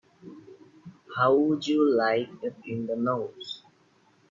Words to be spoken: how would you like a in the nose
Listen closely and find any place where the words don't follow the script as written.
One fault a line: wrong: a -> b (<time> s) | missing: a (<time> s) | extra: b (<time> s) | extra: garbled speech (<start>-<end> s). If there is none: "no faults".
no faults